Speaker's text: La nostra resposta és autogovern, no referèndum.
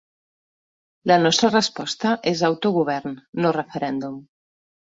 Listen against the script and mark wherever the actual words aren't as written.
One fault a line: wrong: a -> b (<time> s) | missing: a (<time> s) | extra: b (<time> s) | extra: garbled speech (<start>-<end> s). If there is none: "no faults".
no faults